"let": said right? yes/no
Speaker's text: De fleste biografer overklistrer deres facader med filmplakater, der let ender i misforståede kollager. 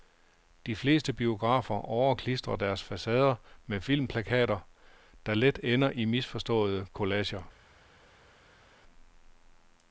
yes